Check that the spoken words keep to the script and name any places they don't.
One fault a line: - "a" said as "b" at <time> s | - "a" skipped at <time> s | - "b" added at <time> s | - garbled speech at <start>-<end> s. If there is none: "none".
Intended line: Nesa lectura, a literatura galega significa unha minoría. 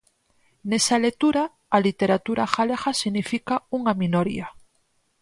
none